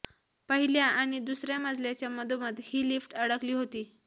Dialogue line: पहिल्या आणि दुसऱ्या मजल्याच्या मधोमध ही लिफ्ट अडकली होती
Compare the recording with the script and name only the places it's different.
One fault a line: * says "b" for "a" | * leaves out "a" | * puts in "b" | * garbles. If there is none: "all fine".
all fine